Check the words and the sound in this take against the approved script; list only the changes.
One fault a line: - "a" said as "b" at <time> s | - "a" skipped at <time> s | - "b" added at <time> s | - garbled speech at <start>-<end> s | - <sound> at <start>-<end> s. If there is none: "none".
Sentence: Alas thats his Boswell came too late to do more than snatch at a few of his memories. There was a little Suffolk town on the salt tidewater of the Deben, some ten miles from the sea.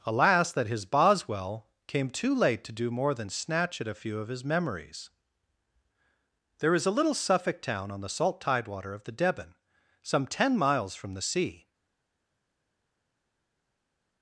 - "thats" said as "that" at 0.5 s
- "was" said as "is" at 6.7 s